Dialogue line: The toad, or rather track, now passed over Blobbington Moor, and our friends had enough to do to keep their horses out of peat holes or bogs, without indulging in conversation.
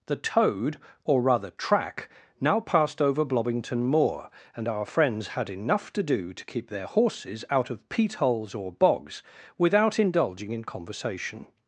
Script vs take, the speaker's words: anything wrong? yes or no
no